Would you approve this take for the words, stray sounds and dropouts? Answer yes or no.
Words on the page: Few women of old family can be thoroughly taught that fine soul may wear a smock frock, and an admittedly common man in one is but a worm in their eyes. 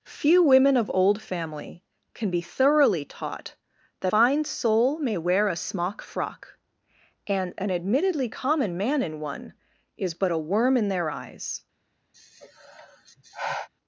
no